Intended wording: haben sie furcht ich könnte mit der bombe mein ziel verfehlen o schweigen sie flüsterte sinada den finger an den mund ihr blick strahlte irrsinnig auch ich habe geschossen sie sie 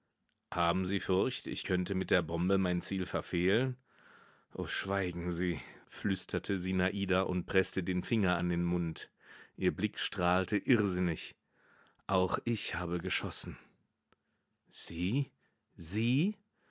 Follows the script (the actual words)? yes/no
no